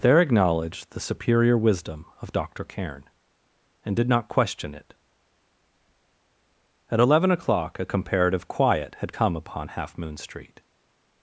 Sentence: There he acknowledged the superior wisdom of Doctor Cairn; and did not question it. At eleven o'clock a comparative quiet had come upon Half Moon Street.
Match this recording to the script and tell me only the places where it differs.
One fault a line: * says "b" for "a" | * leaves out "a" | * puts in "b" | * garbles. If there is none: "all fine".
* leaves out "he"